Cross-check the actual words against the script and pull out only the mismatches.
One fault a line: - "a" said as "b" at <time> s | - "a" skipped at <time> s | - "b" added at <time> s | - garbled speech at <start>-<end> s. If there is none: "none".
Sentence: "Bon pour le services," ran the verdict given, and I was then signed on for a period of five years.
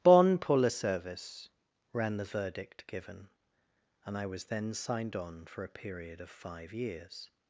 - "services" said as "service" at 0.7 s